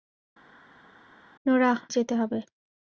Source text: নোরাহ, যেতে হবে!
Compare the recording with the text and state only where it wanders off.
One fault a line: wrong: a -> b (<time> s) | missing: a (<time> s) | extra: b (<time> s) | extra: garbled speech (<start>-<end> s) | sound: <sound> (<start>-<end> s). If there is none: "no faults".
no faults